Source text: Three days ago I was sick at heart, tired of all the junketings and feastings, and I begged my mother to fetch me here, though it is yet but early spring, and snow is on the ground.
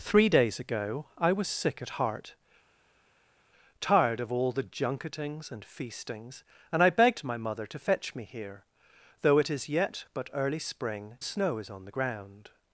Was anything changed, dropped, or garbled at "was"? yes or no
no